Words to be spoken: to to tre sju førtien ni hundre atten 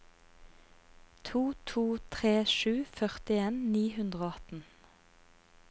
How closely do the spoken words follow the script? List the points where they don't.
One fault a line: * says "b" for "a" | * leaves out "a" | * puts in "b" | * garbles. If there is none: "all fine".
* puts in "og"